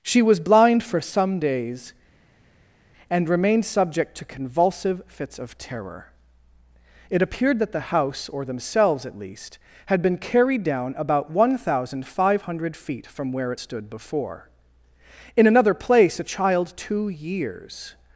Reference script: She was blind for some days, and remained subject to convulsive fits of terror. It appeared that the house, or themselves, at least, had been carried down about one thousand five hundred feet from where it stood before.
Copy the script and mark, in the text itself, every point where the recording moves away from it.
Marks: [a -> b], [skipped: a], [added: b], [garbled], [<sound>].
She was blind for some days, and remained subject to convulsive fits of terror. It appeared that the house, or themselves, at least, had been carried down about one thousand five hundred feet from where it stood before. [added: In another place a child two years]